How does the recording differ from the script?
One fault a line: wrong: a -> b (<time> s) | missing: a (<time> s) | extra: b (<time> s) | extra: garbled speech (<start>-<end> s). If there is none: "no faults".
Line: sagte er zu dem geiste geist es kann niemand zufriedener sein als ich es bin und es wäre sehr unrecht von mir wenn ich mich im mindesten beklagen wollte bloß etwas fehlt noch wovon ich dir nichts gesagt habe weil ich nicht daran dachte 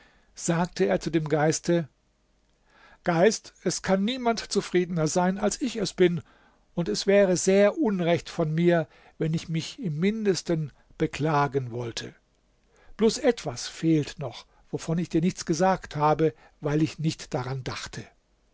no faults